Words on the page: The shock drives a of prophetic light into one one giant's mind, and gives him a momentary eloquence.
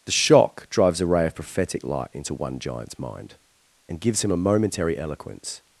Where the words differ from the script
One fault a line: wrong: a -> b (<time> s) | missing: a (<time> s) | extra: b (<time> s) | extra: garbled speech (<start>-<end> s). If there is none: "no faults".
extra: ray (1.1 s)
missing: one (2.6 s)